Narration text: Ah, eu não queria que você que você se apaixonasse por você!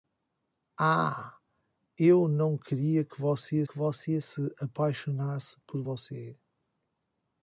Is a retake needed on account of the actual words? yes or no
no